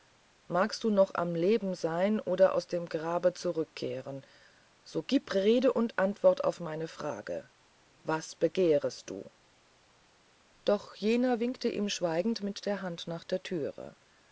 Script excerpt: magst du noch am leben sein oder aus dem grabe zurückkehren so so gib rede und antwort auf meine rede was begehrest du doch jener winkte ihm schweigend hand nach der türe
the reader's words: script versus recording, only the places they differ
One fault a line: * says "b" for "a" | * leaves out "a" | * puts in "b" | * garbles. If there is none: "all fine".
* leaves out "so"
* says "frage" for "rede"
* puts in "mit der"